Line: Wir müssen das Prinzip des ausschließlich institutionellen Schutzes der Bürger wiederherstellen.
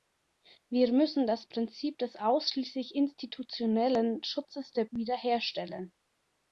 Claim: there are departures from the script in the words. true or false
true